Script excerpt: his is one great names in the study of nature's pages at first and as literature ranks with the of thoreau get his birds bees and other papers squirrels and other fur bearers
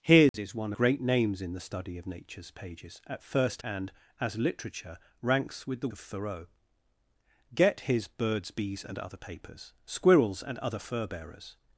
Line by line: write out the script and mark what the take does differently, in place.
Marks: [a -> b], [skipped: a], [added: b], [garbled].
his is one great names in the study of nature's pages at first and as literature ranks with the of thoreau get his birds bees and other papers squirrels and other fur bearers